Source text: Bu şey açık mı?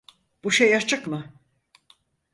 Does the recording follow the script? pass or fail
pass